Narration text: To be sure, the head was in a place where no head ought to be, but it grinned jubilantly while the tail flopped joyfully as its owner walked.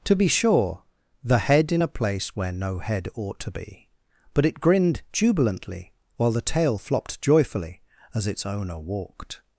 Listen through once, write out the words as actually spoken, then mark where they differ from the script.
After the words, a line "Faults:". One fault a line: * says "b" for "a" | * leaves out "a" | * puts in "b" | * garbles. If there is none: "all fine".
To be sure, the head in a place where no head ought to be, but it grinned jubilantly while the tail flopped joyfully as its owner walked.
Faults:
* leaves out "was"